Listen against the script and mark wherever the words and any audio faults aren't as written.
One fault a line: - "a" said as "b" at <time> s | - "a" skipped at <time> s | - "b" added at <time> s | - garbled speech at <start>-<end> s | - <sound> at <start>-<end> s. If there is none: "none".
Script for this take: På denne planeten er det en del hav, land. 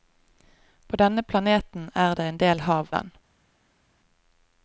none